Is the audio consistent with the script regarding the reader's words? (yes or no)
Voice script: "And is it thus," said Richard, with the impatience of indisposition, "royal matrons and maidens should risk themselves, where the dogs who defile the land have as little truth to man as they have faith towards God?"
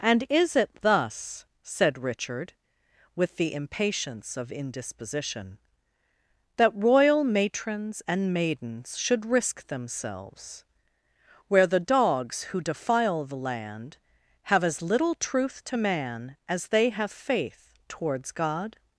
no